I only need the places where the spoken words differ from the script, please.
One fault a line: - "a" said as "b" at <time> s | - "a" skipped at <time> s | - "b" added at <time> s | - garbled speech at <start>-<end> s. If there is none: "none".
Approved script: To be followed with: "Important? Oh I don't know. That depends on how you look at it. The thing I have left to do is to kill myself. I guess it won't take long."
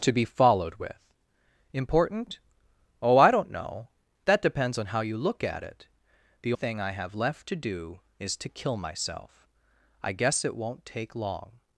none